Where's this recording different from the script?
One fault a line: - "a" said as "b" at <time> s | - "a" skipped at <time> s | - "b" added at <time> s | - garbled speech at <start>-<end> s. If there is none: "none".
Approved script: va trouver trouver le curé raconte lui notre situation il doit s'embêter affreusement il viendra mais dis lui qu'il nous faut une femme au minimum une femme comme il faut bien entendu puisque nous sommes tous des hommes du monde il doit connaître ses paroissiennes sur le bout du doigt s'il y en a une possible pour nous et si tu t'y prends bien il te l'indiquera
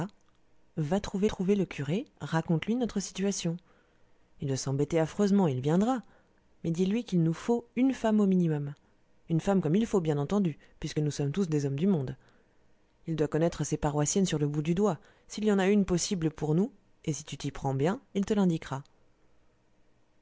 none